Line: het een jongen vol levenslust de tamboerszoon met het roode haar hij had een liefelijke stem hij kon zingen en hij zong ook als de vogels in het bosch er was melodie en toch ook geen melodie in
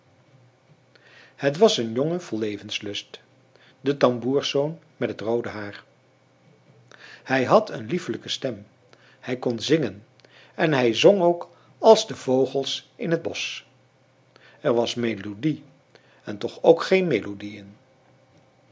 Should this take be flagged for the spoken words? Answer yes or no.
yes